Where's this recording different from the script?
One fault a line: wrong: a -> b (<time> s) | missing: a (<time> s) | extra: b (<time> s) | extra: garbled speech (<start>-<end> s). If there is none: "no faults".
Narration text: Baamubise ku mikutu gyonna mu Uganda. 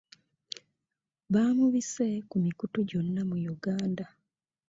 no faults